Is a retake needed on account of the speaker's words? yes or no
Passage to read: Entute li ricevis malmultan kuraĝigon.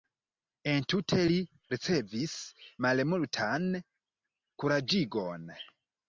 no